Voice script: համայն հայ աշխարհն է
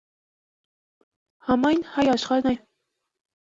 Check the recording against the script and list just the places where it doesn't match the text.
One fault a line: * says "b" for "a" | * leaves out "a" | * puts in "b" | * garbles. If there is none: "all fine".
all fine